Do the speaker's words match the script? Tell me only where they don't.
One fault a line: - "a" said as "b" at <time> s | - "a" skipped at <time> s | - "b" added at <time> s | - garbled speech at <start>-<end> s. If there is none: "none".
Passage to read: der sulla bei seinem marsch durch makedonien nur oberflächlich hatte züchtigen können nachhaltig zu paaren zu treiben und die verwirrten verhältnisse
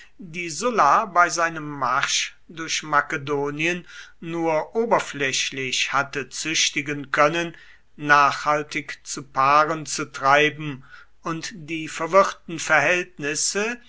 - "der" said as "die" at 0.2 s